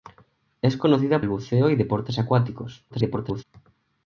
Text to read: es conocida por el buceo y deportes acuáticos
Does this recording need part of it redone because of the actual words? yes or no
yes